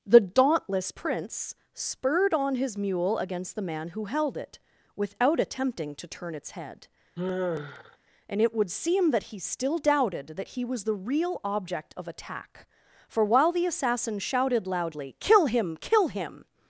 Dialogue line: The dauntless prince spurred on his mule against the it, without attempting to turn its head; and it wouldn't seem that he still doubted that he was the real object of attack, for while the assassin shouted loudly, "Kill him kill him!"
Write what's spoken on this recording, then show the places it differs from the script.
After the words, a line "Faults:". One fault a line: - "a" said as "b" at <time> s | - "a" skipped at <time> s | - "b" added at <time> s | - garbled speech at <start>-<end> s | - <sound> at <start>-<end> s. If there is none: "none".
The dauntless prince spurred on his mule against the man who held it, without attempting to turn its head; and it would seem that he still doubted that he was the real object of attack, for while the assassin shouted loudly, "Kill him kill him!"
Faults:
- "man who held" added at 3.6 s
- sigh at 7.2-8.0 s
- "wouldn't" said as "would" at 8.5 s